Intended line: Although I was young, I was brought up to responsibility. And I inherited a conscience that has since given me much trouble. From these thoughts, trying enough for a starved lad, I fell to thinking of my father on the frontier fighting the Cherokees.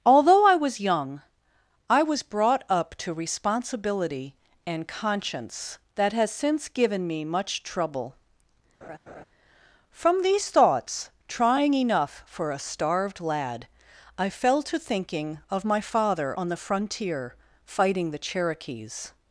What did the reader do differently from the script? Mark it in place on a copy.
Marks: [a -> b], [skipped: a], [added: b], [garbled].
Although I was young, I was brought up to responsibility. And [skipped: I inherited a] conscience that has since given me much trouble. From these thoughts, trying enough for a starved lad, I fell to thinking of my father on the frontier fighting the Cherokees.